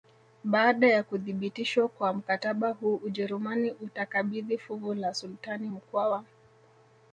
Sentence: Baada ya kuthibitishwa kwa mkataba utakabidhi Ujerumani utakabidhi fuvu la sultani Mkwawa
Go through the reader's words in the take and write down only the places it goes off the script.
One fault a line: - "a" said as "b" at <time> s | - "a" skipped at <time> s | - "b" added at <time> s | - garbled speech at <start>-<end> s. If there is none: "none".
- "utakabidhi" said as "huu" at 2.7 s